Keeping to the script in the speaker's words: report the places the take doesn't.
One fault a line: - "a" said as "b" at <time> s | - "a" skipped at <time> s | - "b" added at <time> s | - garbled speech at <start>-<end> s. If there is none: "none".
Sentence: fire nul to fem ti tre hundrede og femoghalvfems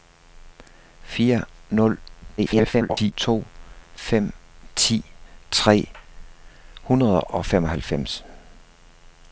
- garbled speech at 2.4-3.1 s